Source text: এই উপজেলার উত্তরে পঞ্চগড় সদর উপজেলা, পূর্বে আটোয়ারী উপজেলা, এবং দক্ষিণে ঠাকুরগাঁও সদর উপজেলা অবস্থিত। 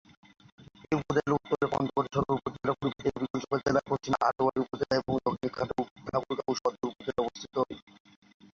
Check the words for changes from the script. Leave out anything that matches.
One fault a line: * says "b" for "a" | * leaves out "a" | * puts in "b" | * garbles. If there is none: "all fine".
* puts in "দেবীগঞ্জ উপজেলা পশ্চিমে"